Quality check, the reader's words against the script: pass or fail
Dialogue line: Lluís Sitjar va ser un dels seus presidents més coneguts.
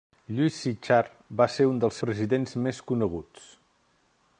fail